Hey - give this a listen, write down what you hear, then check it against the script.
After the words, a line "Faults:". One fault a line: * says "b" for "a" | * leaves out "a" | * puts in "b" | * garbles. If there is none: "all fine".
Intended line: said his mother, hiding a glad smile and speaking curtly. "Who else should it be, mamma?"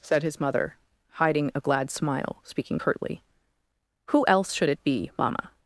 said his mother, hiding a glad smile speaking curtly. "Who else should it be, mamma?"
Faults:
* leaves out "and"